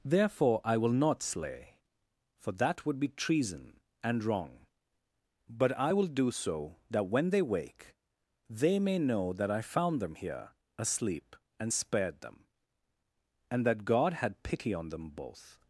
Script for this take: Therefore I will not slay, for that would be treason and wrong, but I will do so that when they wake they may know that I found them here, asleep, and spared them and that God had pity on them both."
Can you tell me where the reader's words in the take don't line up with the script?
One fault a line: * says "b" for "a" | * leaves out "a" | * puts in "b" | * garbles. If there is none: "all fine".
all fine